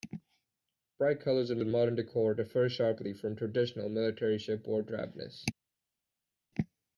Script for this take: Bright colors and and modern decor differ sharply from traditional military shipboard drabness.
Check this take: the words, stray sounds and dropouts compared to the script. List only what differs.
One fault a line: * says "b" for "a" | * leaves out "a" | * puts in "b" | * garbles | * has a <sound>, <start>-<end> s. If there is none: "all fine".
all fine